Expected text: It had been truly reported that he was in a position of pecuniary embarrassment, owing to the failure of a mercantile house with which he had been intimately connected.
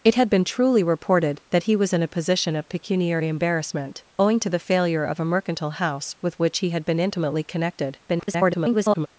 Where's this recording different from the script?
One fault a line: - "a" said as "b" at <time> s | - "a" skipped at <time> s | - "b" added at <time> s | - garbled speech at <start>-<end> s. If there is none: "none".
- garbled speech at 8.1-9.1 s